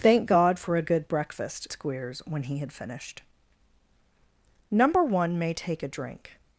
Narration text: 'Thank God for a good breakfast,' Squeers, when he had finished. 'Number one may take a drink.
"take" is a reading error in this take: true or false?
false